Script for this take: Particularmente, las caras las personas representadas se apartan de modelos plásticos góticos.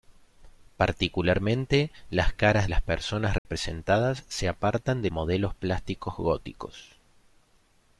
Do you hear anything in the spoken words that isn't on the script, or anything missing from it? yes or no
no